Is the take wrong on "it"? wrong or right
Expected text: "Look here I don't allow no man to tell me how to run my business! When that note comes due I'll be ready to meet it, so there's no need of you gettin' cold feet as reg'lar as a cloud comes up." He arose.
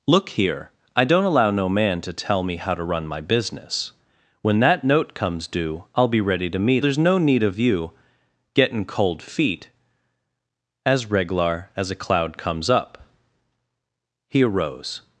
wrong